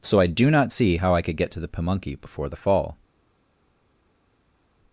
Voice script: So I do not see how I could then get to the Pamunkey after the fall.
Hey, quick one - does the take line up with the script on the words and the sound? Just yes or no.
no